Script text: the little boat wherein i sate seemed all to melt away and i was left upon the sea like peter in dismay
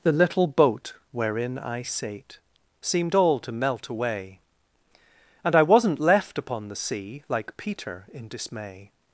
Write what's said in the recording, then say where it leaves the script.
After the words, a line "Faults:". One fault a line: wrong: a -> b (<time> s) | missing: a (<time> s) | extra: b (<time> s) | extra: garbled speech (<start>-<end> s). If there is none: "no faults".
the little boat wherein i sate seemed all to melt away and i wasn't left upon the sea like peter in dismay
Faults:
wrong: was -> wasn't (5.6 s)